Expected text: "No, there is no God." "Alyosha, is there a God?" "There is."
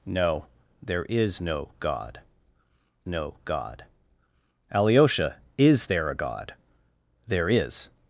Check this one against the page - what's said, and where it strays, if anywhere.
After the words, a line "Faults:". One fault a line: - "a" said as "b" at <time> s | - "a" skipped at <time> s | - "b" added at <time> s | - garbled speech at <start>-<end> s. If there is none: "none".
"No, there is no God no God." "Alyosha, is there a God?" "There is."
Faults:
- "no God" added at 3.1 s